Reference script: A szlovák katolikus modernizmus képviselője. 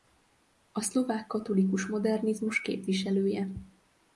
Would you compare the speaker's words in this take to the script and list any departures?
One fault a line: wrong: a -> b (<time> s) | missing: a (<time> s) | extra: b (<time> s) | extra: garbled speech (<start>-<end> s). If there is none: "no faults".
no faults